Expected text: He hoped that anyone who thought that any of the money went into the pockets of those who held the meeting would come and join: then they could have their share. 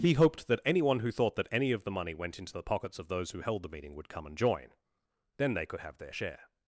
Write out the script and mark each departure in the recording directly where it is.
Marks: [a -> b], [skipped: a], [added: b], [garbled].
He hoped that anyone who thought that any of the money went into the pockets of those who held the meeting would come and join: then they could have their share.